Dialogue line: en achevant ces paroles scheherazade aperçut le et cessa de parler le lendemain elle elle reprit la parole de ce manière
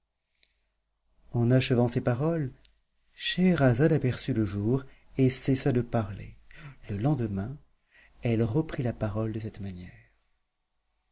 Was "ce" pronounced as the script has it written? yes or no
no